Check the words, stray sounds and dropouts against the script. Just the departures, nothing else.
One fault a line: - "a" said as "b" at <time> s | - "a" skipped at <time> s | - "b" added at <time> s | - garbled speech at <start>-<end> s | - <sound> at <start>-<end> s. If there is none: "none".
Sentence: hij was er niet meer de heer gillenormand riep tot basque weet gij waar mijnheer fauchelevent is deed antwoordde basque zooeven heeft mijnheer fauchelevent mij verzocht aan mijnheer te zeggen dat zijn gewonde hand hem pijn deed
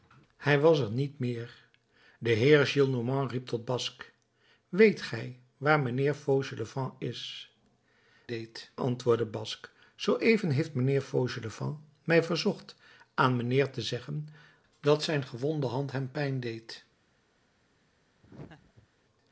- laugh at 18.2-18.9 s